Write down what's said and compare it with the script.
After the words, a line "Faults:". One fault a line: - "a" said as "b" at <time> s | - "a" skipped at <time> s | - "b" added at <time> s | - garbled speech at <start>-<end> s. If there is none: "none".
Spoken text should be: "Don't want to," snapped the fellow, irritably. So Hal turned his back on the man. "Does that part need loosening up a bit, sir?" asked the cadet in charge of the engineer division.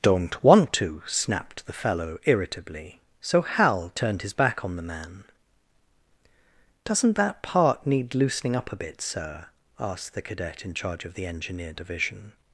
"Don't want to," snapped the fellow, irritably. So Hal turned his back on the man. "Doesn't that part need loosening up a bit, sir?" asked the cadet in charge of the engineer division.
Faults:
- "Does" said as "Doesn't" at 6.9 s